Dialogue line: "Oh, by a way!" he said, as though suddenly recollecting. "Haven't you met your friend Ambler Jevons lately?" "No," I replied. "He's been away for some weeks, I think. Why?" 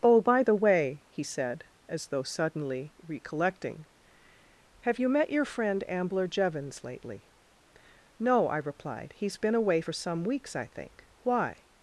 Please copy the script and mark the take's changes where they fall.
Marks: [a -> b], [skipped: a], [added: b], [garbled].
"Oh, by [a -> the] way!" he said, as though suddenly recollecting. ["Haven't -> Have] you met your friend Ambler Jevons lately?" "No," I replied. "He's been away for some weeks, I think. Why?"